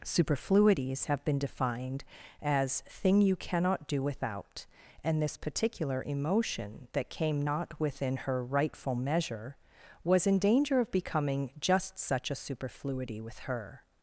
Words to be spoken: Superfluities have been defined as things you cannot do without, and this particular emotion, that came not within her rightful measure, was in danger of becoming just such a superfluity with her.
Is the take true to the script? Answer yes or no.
no